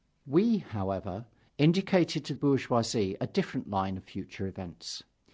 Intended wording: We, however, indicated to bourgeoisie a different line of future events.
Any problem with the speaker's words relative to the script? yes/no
no